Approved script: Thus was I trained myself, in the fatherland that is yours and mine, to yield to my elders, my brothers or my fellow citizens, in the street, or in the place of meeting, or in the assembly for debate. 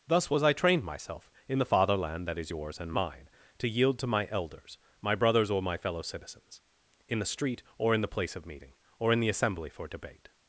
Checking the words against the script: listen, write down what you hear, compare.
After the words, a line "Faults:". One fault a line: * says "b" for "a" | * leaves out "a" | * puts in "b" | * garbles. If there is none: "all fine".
Thus was I trained myself, in the fatherland that is yours and mine, to yield to my elders, my brothers or my fellow citizens, in the street, or in the place of meeting, or in the assembly for debate.
Faults:
all fine